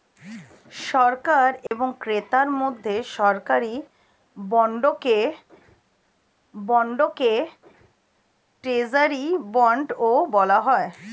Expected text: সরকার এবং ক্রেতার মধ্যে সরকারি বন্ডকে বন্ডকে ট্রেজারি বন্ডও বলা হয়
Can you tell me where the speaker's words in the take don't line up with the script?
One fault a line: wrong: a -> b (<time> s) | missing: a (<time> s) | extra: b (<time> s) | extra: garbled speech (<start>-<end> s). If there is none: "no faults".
no faults